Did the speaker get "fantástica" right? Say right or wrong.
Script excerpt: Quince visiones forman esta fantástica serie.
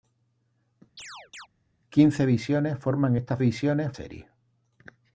wrong